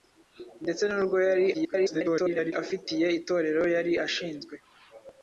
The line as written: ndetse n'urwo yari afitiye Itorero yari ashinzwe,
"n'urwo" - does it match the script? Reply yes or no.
yes